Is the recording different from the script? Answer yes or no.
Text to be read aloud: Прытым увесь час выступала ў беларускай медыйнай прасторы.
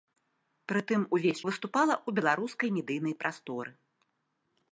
yes